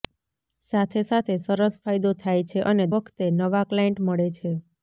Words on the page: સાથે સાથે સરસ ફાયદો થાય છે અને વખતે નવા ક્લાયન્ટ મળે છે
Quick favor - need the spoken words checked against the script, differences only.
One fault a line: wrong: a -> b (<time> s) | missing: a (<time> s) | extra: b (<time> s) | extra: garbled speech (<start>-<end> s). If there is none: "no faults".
no faults